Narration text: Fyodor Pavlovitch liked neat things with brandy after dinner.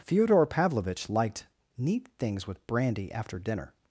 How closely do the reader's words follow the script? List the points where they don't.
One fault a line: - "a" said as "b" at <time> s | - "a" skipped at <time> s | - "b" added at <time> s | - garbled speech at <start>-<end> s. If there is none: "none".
none